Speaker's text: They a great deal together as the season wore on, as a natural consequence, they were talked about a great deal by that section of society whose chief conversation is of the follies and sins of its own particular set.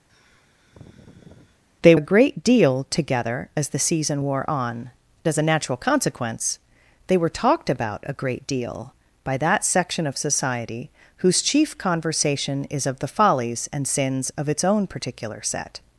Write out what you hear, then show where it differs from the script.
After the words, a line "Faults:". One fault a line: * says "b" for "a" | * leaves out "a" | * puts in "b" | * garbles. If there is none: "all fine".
They a great deal together as the season wore on, as a natural consequence, they were talked about a great deal by that section of society whose chief conversation is of the follies and sins of its own particular set.
Faults:
all fine